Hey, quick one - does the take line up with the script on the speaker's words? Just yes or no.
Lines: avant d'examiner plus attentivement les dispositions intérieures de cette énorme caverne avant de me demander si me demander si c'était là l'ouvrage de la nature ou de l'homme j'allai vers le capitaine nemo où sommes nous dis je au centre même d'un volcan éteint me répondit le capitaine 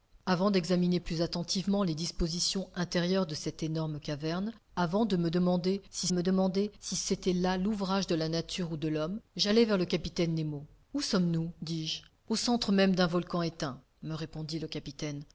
yes